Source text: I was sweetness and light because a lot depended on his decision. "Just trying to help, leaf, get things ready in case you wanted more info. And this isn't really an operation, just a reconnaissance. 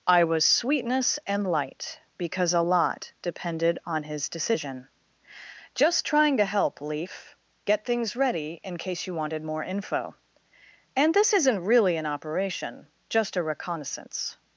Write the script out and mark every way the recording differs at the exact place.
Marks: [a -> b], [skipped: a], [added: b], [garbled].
I was sweetness and light because a lot depended on his decision. "Just trying to help, leaf, get things ready in case you wanted more info. And this isn't really an operation, just a reconnaissance.